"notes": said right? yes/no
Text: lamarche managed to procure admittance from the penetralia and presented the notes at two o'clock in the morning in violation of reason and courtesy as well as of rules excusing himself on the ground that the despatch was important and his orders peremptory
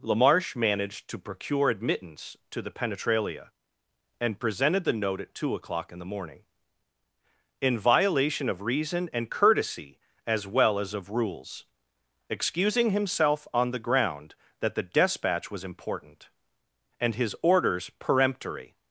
no